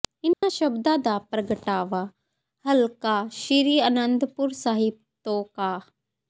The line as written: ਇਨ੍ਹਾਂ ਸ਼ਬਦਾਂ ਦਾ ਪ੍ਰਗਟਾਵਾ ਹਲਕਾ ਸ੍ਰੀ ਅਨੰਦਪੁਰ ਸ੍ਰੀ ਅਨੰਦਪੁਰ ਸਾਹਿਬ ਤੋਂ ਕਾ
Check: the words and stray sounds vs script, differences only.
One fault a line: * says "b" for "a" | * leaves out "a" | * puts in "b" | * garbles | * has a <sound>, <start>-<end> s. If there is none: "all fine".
* has a dropout, 0.3-0.4 s
* leaves out "ਸ੍ਰੀ ਅਨੰਦਪੁਰ"